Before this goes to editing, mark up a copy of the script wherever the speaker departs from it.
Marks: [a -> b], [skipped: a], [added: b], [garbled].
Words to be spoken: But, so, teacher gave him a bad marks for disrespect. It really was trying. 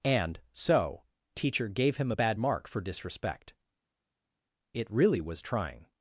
[But, -> And] so, teacher gave him a bad [marks -> mark] for disrespect. It really was trying.